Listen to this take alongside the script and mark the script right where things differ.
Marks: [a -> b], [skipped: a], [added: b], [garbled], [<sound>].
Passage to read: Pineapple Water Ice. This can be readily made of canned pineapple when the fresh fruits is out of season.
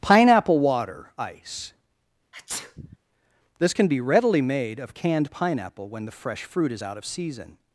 Pineapple Water Ice. [sneeze] This can be readily made of canned pineapple when the fresh [fruits -> fruit] is out of season.